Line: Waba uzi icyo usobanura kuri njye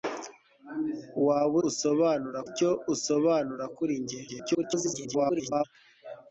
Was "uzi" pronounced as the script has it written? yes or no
no